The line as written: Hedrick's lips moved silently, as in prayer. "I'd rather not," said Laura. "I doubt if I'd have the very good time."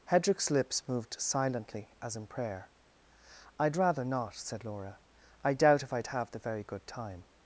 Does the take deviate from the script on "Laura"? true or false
false